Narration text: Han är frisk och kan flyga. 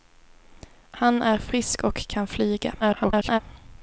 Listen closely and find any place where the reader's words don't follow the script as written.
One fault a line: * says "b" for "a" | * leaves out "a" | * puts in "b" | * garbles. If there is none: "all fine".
* garbles